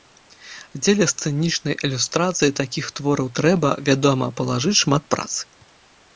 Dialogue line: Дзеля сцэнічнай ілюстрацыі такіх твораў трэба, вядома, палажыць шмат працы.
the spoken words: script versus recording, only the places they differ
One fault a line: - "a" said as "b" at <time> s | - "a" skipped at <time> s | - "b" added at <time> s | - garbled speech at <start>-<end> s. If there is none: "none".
none